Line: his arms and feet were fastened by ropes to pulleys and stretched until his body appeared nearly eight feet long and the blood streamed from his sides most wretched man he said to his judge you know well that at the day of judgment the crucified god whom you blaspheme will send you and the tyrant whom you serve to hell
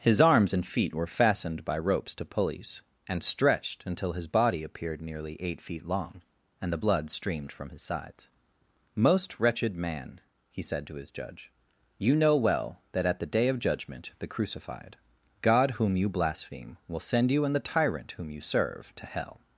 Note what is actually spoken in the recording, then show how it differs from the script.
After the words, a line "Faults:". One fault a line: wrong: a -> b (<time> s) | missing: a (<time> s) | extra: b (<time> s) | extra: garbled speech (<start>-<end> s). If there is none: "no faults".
his arms and feet were fastened by ropes to pulleys and stretched until his body appeared nearly eight feet long and the blood streamed from his sides most wretched man he said to his judge you know well that at the day of judgment the crucified god whom you blaspheme will send you and the tyrant whom you serve to hell
Faults:
no faults